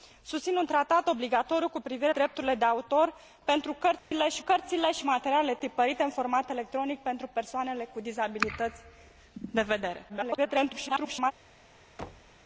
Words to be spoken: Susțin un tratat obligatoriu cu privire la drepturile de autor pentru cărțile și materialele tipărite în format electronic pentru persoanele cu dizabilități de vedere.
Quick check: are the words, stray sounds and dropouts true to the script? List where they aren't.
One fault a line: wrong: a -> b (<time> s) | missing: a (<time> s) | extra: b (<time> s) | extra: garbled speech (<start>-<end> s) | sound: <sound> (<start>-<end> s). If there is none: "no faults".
missing: la (2.1 s)
sound: dropout (4.0-4.1 s)
extra: cărțile și (4.4 s)
extra: garbled speech (10.1-11.3 s)
sound: thud (12.0-12.4 s)